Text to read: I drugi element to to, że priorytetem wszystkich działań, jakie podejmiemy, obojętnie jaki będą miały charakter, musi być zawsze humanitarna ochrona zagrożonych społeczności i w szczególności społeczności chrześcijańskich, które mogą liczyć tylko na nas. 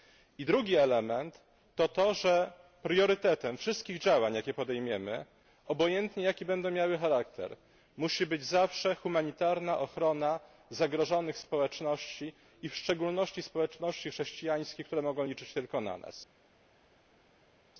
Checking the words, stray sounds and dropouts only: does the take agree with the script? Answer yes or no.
yes